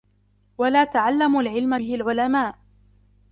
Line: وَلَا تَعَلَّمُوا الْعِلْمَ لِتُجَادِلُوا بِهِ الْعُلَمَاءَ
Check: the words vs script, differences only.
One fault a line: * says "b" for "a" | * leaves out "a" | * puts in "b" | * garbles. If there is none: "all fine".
* leaves out "لِتُجَادِلُوا"